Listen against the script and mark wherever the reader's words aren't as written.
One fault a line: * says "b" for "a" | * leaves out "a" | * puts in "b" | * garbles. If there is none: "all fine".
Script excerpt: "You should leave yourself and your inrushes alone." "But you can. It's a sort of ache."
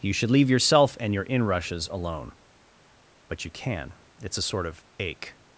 all fine